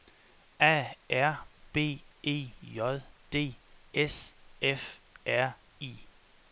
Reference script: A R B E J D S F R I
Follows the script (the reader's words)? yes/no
yes